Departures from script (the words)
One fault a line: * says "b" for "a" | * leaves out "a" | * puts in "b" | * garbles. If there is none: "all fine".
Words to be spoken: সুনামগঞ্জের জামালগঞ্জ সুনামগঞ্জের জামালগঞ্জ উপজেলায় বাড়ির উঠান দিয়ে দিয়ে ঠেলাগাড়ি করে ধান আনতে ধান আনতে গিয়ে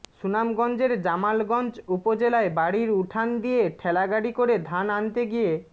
* leaves out "সুনামগঞ্জের জামালগঞ্জ"
* leaves out "দিয়ে"
* leaves out "ধান আনতে"